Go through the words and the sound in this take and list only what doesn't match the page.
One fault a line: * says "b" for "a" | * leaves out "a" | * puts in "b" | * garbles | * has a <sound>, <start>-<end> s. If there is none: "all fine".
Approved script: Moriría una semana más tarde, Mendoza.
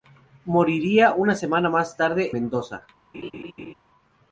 * has a laugh, 3.1-3.7 s